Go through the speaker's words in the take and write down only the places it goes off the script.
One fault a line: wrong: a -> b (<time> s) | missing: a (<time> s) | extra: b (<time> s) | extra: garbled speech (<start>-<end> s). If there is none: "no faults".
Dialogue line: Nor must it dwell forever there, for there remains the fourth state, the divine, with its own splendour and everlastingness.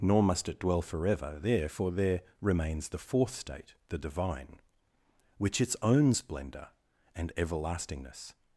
wrong: with -> which (5.4 s)